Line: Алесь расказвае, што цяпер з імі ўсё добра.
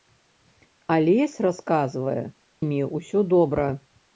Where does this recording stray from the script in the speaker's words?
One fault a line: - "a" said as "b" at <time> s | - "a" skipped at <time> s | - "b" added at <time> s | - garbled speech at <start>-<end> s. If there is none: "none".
- "што цяпер з" skipped at 2.2 s